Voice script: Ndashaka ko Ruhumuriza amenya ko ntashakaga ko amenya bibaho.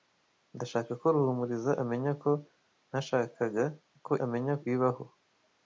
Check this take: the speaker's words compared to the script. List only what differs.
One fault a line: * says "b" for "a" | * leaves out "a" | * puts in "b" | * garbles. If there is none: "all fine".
all fine